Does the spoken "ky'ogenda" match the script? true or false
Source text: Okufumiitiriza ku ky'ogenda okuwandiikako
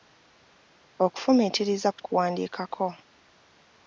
false